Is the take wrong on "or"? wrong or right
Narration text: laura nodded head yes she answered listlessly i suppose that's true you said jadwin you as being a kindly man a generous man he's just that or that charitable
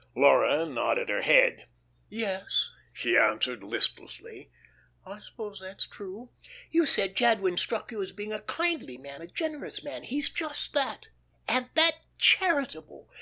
wrong